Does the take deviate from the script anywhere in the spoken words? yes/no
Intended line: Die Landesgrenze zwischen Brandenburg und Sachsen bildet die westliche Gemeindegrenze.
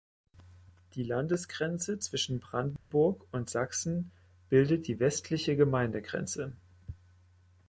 no